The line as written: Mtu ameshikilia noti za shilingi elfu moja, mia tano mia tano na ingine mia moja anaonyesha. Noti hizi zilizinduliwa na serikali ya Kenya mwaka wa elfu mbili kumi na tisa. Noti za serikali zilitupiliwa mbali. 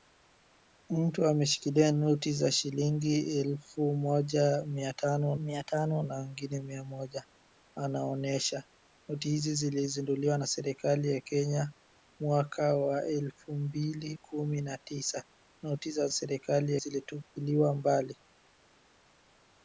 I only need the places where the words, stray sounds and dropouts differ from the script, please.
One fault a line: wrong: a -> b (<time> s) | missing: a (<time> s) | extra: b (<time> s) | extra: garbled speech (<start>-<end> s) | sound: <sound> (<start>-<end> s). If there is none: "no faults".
no faults